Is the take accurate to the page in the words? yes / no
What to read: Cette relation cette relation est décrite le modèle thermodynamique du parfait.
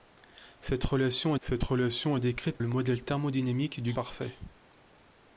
yes